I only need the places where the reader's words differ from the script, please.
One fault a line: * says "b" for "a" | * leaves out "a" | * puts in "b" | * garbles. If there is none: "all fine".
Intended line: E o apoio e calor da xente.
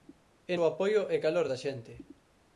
all fine